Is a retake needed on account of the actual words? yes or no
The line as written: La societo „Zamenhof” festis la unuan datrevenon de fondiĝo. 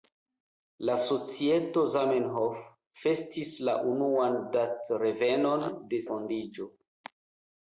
no